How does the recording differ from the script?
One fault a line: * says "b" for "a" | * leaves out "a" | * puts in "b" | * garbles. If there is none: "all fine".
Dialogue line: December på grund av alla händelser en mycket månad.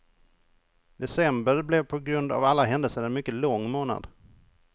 * puts in "blev"
* puts in "lång"